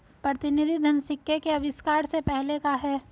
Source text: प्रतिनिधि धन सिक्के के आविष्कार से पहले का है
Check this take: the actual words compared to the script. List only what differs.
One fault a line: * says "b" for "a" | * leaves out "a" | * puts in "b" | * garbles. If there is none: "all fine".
all fine